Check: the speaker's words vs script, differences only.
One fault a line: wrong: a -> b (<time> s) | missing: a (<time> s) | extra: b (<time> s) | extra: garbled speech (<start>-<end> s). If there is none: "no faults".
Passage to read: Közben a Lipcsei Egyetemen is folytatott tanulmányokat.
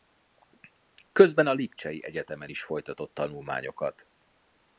no faults